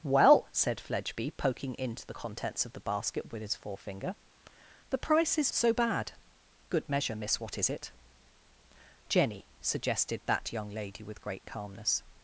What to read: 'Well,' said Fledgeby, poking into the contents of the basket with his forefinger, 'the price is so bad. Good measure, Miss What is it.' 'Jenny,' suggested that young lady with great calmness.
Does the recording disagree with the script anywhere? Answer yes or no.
no